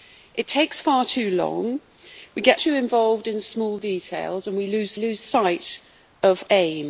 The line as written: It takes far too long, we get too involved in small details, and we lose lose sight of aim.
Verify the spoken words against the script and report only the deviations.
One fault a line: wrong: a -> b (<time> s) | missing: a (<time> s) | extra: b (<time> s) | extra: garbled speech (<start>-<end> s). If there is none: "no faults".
no faults